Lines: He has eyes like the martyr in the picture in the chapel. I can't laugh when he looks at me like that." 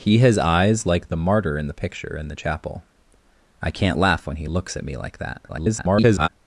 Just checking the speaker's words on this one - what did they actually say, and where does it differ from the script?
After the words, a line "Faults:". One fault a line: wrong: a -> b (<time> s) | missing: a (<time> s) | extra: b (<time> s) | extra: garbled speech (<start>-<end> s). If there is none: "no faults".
He has eyes like the martyr in the picture in the chapel. I can't laugh when he looks at me like that." [garbled]
Faults:
extra: garbled speech (5.5-6.3 s)